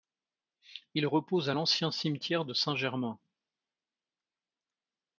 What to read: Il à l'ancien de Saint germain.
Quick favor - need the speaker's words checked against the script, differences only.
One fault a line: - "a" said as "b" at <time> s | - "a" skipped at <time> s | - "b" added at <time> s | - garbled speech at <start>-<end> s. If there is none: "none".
- "repose" added at 1.1 s
- "cimetière" added at 1.9 s